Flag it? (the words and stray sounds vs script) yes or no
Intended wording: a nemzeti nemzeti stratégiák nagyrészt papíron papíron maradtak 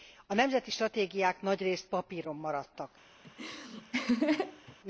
yes